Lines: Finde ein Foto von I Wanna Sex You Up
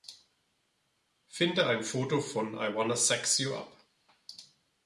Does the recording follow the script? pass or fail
pass